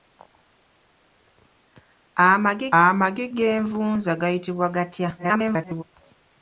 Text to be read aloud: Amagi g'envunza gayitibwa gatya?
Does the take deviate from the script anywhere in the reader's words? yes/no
yes